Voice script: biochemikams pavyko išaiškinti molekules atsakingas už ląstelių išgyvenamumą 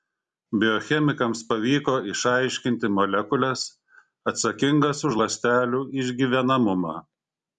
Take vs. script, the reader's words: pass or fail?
pass